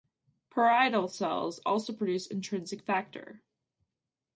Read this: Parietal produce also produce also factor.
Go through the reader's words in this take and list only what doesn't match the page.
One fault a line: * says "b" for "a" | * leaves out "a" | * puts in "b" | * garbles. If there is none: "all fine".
* says "cells" for "produce"
* says "intrinsic" for "also"